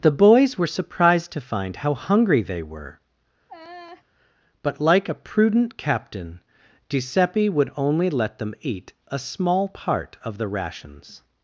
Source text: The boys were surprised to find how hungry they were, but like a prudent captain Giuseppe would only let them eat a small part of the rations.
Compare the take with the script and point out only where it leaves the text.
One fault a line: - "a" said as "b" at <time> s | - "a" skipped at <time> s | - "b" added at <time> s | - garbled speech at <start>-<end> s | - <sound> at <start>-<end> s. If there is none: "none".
- laugh at 3.5-4.0 s